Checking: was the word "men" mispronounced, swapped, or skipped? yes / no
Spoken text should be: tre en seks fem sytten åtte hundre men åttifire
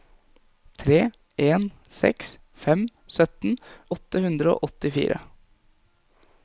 yes